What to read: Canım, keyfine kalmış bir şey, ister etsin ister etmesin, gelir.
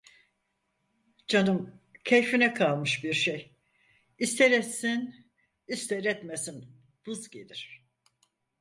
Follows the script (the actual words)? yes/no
no